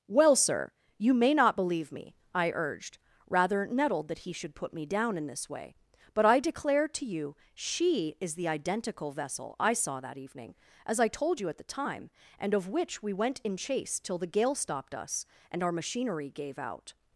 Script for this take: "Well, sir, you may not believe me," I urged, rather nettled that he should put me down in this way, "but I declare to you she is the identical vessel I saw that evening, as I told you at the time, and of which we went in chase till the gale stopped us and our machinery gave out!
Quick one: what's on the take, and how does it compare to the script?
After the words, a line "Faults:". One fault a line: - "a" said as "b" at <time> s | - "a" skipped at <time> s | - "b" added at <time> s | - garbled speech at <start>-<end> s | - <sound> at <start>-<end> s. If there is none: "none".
"Well, sir, you may not believe me," I urged, rather nettled that he should put me down in this way, "but I declare to you she is the identical vessel I saw that evening, as I told you at the time, and of which we went in chase till the gale stopped us and our machinery gave out!
Faults:
none